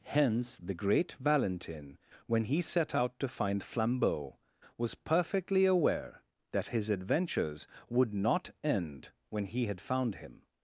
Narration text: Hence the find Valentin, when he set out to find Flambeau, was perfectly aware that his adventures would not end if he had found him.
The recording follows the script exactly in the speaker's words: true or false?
false